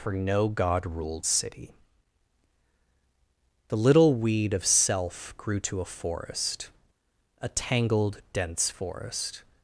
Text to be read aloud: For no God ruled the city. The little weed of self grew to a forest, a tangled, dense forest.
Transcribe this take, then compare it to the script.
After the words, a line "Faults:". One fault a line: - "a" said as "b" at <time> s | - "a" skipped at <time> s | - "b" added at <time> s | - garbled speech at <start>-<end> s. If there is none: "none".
For no God ruled city. The little weed of self grew to a forest, a tangled, dense forest.
Faults:
- "the" skipped at 1.3 s